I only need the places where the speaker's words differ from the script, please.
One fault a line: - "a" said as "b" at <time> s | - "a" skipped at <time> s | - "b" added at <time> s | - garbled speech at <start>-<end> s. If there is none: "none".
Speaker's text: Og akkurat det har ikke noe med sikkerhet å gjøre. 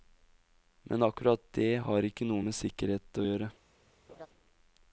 - "Og" said as "Men" at 0.9 s